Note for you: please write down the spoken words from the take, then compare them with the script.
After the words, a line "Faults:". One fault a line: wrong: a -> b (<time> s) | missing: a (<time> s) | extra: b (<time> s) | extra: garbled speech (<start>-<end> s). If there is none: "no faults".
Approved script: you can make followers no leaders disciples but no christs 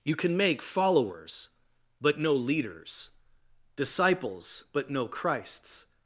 you can make followers but no leaders disciples but no christs
Faults:
extra: but (2.0 s)